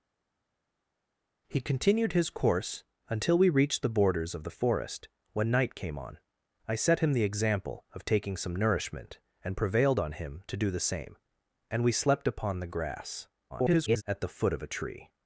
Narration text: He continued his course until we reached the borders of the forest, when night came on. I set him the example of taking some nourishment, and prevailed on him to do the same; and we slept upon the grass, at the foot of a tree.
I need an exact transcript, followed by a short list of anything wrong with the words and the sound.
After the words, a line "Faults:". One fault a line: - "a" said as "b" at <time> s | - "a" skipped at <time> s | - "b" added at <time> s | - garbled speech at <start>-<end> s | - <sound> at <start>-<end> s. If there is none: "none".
He continued his course until we reached the borders of the forest, when night came on. I set him the example of taking some nourishment, and prevailed on him to do the same; and we slept upon the grass, [garbled] at the foot of a tree.
Faults:
- garbled speech at 13.5-14.0 s